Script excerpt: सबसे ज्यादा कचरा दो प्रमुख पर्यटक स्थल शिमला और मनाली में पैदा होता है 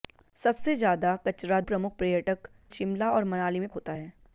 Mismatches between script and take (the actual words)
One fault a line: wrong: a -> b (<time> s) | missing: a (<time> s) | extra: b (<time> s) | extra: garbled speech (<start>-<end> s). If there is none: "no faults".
missing: दो (1.6 s)
missing: स्थल (2.5 s)
missing: पैदा (3.7 s)